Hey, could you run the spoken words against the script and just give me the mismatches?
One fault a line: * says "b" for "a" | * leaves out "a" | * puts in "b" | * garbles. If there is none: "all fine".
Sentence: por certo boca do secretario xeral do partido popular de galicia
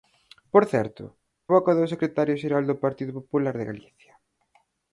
all fine